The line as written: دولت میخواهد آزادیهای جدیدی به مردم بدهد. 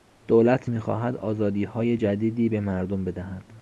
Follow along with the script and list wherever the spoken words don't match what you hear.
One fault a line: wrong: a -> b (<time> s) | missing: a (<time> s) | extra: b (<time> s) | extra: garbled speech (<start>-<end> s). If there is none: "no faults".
no faults